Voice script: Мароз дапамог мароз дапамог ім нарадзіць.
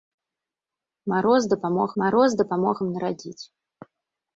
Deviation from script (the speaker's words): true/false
false